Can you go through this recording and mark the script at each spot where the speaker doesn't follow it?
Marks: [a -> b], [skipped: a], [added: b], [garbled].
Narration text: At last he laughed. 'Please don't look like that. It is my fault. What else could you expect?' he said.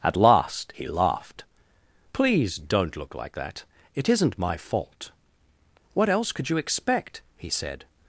At last he laughed. 'Please don't look like that. It [is -> isn't] my fault. What else could you expect?' he said.